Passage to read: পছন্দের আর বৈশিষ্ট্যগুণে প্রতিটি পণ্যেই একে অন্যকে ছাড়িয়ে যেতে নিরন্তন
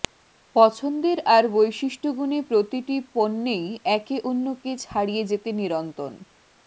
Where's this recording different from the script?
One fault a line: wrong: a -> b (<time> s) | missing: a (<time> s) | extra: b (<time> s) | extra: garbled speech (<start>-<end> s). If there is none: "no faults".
no faults